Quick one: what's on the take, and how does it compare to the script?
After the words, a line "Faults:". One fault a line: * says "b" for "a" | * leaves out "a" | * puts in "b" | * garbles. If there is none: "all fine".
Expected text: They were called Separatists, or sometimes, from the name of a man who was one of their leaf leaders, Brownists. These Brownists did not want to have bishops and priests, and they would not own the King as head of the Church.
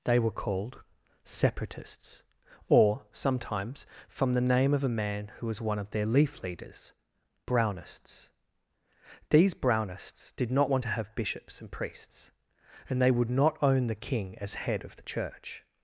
They were called Separatists, or sometimes, from the name of a man who was one of their leaf leaders, Brownists. These Brownists did not want to have bishops and priests, and they would not own the King as head of the Church.
Faults:
all fine